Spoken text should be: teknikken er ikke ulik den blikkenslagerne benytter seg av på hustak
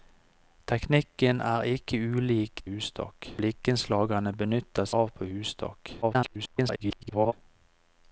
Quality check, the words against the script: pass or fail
fail